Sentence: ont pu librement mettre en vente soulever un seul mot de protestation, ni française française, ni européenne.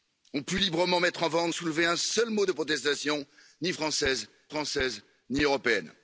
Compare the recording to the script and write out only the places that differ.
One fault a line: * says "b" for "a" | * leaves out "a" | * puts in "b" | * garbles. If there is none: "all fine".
all fine